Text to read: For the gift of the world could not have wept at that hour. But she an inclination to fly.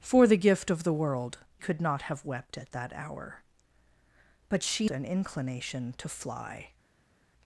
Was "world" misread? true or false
false